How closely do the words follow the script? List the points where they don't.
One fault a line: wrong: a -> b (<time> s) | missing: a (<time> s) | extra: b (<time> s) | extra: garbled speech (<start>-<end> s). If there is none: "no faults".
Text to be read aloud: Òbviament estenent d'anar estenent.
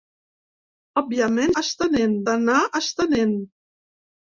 no faults